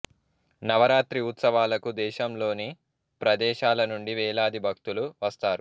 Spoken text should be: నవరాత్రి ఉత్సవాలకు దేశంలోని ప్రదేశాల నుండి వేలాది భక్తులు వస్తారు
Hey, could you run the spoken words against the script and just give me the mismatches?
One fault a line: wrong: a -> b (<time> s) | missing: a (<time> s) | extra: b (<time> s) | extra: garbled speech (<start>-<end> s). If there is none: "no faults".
no faults